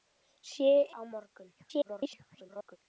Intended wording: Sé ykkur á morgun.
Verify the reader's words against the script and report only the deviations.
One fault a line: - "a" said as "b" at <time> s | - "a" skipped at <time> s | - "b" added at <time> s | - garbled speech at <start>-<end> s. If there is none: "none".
- "ykkur" skipped at 0.7 s
- garbled speech at 1.6-2.8 s